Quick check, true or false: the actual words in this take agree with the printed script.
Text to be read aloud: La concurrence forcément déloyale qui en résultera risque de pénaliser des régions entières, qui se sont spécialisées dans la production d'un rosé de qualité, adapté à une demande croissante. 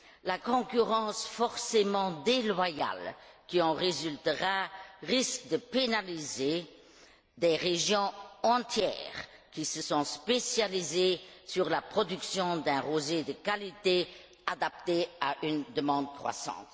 true